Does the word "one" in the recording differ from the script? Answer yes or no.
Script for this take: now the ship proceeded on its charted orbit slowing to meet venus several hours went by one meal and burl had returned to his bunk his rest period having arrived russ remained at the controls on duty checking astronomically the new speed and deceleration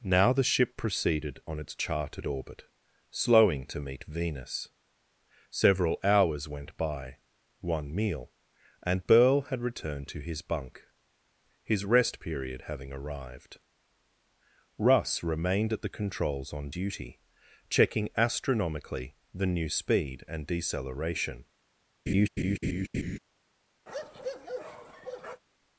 no